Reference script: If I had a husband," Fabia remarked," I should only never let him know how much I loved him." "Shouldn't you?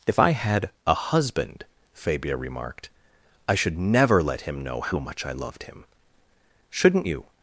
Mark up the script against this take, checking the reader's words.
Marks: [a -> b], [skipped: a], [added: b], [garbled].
If I had a husband," Fabia remarked," I should [skipped: only] never let him know how much I loved him." "Shouldn't you?